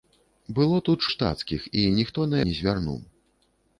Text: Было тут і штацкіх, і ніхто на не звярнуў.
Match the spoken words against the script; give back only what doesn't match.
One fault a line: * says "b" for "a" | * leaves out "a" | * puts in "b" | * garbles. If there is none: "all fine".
all fine